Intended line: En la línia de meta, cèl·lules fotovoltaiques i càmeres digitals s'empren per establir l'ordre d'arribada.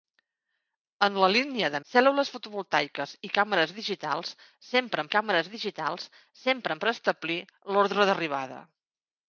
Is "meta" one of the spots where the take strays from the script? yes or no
yes